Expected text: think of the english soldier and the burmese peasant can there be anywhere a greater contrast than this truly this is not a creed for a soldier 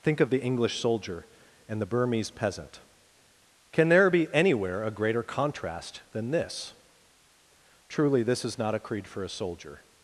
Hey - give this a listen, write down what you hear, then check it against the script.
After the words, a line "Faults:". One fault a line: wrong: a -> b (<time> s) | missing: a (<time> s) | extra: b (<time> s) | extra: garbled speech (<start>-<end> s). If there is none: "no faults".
think of the english soldier and the burmese peasant can there be anywhere a greater contrast than this truly this is not a creed for a soldier
Faults:
no faults